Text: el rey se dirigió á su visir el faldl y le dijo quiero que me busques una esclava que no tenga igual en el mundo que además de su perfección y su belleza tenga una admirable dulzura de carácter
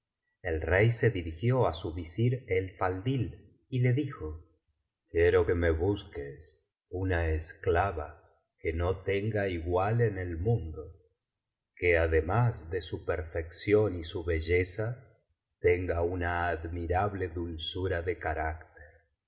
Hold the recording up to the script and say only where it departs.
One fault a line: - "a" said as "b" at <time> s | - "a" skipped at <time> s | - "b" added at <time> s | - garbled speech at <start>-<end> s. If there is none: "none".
none